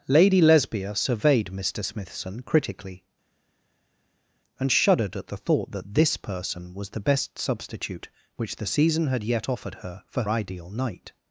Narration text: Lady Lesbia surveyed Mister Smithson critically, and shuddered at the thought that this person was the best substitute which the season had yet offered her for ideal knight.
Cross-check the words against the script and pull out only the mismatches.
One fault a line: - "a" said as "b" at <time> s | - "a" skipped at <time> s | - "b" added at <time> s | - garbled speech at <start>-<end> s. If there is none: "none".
none